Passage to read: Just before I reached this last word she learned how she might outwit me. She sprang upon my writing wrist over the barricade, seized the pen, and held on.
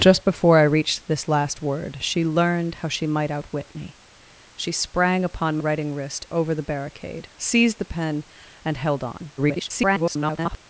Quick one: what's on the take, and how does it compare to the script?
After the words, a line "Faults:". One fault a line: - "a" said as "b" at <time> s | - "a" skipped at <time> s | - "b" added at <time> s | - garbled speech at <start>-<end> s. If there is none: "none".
Just before I reached this last word she learned how she might outwit me. She sprang upon writing wrist over the barricade, seized the pen, and held on. [garbled]
Faults:
- "my" skipped at 5.6 s
- garbled speech at 9.4-10.6 s